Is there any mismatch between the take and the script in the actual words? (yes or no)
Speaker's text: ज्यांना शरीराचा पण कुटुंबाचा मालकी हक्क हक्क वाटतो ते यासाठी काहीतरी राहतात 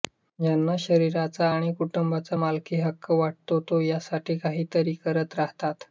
yes